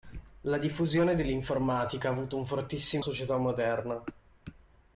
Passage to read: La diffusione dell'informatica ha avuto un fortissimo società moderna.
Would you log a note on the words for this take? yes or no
no